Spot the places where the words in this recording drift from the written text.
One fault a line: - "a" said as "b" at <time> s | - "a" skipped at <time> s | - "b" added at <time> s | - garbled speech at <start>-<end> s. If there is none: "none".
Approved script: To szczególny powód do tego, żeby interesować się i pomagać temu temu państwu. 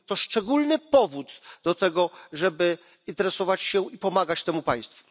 - "temu" skipped at 4.6 s